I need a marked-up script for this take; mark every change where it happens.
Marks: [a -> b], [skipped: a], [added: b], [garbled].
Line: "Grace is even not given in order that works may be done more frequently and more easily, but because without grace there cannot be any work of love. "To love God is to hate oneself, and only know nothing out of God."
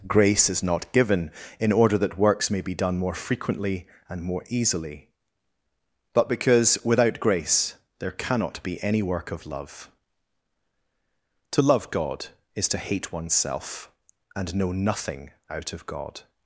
"Grace is [skipped: even] not given in order that works may be done more frequently and more easily, but because without grace there cannot be any work of love. "To love God is to hate oneself, and [skipped: only] know nothing out of God."